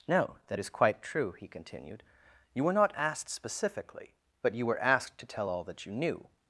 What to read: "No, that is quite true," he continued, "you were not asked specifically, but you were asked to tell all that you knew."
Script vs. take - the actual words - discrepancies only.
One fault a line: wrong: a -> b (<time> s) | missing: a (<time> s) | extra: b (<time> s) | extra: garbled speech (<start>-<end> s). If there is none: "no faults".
no faults